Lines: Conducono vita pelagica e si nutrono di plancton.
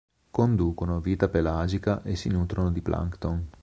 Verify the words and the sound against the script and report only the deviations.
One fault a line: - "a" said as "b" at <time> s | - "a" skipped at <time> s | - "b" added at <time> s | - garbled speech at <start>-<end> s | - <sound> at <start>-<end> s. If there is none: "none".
none